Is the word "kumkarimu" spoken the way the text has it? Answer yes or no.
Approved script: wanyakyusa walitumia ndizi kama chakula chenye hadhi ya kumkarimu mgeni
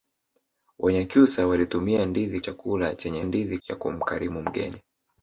yes